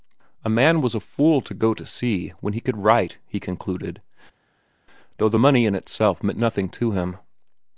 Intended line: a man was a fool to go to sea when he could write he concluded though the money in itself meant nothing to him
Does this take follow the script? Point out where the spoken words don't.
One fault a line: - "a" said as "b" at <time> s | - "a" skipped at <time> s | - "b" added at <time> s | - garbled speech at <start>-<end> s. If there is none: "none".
none